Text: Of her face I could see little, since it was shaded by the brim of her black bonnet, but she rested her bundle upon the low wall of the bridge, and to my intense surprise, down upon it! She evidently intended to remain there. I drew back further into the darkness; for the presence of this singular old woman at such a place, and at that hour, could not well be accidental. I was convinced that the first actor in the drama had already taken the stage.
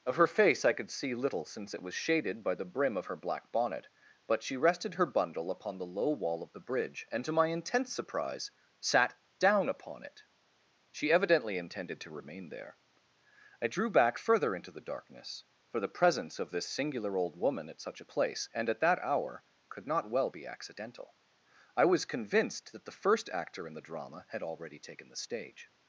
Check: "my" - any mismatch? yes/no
no